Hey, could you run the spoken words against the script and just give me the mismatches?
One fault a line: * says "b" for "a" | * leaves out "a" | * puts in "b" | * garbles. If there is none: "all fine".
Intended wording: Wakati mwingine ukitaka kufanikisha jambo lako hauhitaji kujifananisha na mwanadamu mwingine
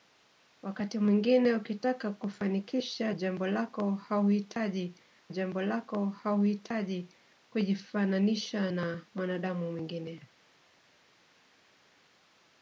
* puts in "jambo lako hauhitaji"